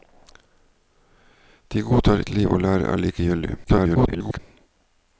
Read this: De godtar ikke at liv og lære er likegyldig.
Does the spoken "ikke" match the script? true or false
false